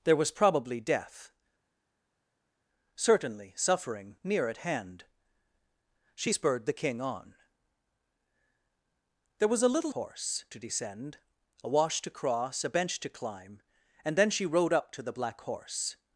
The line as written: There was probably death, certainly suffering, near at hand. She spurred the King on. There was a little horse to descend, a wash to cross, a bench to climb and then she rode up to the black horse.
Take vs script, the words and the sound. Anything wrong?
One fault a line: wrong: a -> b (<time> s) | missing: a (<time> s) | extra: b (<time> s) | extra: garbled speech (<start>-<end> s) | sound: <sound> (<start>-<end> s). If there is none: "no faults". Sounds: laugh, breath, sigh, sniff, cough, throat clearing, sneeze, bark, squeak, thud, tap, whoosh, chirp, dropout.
no faults